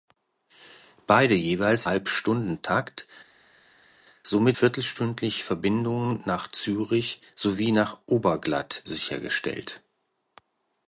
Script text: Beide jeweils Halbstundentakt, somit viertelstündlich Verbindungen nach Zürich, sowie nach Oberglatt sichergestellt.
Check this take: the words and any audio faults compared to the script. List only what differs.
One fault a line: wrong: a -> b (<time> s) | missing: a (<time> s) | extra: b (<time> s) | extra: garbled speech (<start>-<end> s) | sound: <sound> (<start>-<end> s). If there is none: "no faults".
no faults